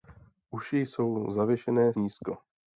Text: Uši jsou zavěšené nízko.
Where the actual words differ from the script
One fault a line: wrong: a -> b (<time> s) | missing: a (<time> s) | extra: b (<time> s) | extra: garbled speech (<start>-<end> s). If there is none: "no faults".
no faults